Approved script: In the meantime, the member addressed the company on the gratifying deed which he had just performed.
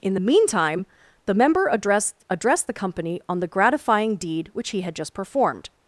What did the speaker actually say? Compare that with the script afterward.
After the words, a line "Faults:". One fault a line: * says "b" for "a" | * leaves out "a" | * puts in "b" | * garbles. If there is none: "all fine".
In the meantime, the member addressed addressed the company on the gratifying deed which he had just performed.
Faults:
* puts in "addressed"